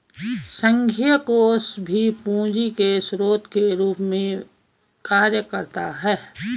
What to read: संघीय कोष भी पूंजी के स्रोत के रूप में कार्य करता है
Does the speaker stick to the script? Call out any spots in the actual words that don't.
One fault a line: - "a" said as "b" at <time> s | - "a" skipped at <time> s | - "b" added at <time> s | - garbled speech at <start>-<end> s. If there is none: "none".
none